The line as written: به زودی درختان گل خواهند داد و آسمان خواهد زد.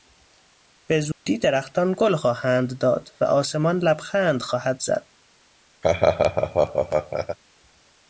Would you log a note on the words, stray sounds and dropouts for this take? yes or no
yes